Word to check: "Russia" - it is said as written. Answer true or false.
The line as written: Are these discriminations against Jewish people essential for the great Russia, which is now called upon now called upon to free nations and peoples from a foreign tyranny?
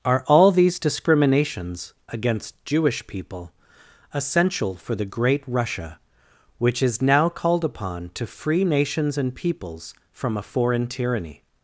true